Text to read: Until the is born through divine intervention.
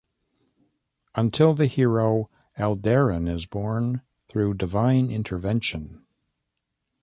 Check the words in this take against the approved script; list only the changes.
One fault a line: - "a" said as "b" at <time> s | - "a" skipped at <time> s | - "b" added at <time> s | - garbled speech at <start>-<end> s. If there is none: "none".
- "hero Aldarin" added at 1.7 s